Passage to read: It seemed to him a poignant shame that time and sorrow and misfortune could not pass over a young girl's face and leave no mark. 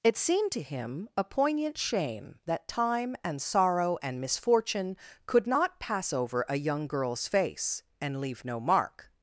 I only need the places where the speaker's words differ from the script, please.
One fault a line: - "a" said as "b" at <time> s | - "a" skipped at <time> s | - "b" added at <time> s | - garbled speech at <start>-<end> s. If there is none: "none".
none